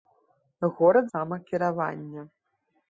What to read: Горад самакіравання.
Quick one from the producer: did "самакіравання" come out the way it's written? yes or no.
yes